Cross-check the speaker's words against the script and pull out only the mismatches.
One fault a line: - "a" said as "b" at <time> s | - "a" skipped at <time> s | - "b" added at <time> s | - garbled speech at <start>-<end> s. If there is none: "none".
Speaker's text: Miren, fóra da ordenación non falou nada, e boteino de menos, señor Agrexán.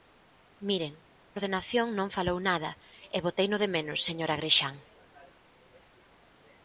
- "fóra da" skipped at 0.9 s